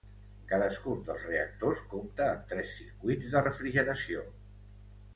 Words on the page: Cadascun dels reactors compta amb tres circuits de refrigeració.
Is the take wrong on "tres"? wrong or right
right